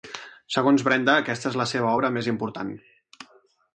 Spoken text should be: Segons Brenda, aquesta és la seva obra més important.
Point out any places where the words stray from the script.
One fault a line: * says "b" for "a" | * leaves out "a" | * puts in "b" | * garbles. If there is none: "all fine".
all fine